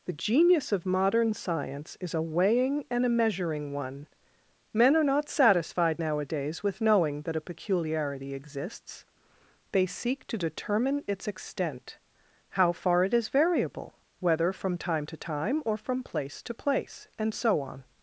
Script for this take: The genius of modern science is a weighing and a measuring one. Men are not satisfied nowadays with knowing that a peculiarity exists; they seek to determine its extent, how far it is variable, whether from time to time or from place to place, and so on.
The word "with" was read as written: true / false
true